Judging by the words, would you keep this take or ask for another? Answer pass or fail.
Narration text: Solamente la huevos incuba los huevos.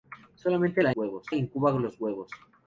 pass